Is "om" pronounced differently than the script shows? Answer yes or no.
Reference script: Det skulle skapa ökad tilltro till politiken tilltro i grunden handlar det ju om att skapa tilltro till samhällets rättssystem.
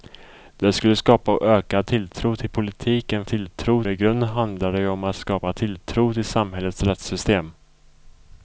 no